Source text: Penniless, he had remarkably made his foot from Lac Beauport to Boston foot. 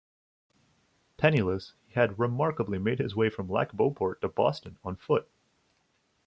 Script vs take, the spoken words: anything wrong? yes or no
yes